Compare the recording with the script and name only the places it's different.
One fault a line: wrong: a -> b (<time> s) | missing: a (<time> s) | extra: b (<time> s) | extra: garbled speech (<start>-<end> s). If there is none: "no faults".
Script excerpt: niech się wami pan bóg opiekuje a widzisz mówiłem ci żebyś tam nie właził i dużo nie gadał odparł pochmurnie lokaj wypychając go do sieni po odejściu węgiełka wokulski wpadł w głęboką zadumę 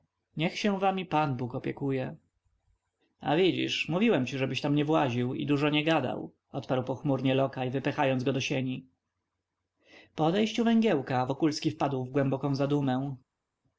no faults